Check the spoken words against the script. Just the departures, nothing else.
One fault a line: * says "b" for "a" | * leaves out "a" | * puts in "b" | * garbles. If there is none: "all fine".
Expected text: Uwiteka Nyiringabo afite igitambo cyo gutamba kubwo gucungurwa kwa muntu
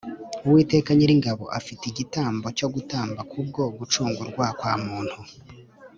all fine